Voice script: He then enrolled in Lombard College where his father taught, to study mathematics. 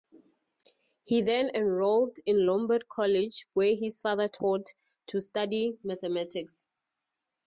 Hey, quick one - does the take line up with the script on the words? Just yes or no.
yes